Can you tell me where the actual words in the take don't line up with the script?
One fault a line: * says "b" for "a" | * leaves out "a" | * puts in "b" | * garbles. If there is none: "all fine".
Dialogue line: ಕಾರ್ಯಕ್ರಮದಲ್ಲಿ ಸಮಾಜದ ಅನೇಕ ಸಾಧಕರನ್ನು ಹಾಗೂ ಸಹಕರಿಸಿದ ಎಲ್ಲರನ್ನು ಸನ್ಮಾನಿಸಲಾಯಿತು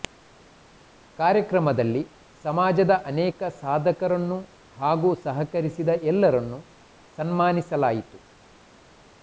all fine